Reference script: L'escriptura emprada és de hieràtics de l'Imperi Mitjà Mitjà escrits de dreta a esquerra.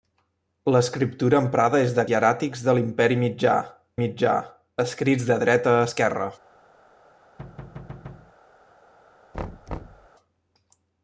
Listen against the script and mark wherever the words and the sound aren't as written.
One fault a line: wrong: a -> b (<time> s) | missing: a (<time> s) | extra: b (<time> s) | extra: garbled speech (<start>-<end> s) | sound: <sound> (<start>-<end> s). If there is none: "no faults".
sound: thud (7.4-8.3 s)
sound: thud (9.3-10.1 s)